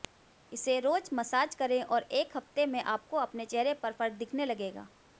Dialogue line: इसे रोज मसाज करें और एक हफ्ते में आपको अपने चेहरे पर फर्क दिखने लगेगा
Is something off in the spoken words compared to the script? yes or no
no